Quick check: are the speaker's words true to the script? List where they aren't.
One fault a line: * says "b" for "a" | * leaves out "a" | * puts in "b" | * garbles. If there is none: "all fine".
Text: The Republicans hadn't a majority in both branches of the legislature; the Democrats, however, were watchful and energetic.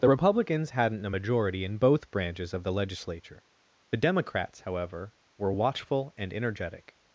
all fine